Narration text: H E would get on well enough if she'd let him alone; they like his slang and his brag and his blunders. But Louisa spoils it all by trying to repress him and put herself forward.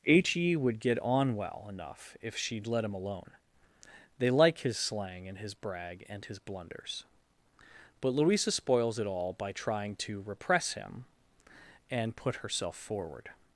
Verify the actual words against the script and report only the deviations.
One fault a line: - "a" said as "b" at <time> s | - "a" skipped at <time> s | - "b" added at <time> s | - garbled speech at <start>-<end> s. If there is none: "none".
none